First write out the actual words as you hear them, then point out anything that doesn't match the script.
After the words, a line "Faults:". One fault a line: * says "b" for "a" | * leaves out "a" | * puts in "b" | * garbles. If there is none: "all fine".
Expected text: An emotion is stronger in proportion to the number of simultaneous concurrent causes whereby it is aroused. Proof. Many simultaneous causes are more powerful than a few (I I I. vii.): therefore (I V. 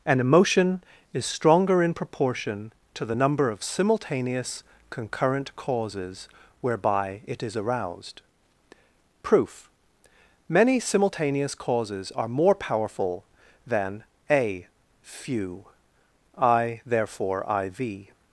An emotion is stronger in proportion to the number of simultaneous concurrent causes whereby it is aroused. Proof. Many simultaneous causes are more powerful than a few (I.): therefore (I V.
Faults:
* leaves out "I I vii"